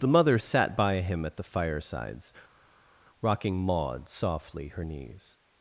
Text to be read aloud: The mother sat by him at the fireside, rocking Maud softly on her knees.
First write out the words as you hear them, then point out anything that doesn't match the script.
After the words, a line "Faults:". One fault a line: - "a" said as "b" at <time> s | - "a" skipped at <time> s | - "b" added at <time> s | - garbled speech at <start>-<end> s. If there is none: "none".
The mother sat by him at the firesides, rocking Maud softly her knees.
Faults:
- "fireside" said as "firesides" at 1.4 s
- "on" skipped at 4.7 s